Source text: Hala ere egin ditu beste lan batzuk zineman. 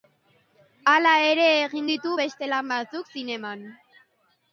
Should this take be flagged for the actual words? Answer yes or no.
no